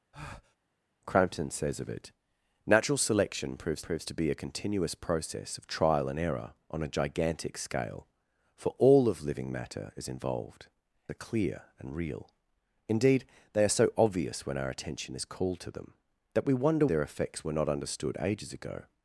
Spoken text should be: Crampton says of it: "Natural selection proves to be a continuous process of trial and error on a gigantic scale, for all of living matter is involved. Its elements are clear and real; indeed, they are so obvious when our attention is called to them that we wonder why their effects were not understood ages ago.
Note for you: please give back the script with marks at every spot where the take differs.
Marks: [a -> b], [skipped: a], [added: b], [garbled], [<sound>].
[breath] Crampton says of it: "Natural selection proves [added: proves] to be a continuous process of trial and error on a gigantic scale, for all of living matter is involved. [skipped: Its elements] are clear and real; indeed, they are so obvious when our attention is called to them that we wonder [skipped: why] their effects were not understood ages ago.